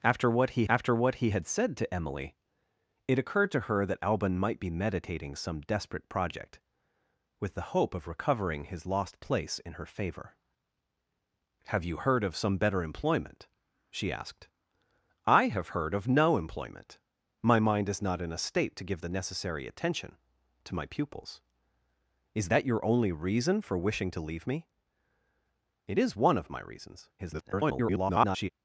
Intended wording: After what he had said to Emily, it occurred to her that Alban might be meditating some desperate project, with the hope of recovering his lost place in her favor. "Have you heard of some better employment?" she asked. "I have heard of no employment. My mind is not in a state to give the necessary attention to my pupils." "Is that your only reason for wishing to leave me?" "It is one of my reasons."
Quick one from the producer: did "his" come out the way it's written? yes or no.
yes